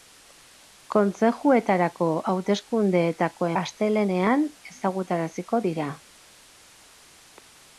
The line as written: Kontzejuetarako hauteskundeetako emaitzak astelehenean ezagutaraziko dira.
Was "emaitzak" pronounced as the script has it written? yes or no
no